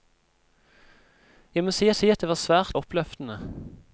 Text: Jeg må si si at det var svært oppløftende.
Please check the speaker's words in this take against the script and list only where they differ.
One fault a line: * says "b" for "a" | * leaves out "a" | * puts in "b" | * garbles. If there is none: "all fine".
all fine